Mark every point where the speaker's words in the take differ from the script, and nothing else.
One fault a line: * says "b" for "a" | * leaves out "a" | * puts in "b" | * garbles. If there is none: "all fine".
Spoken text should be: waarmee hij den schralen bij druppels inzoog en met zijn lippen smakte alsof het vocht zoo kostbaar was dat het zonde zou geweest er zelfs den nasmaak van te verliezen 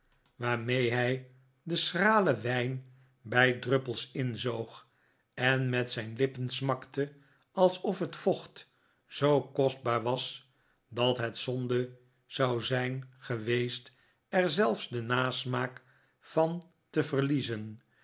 * puts in "wijn"
* puts in "zijn"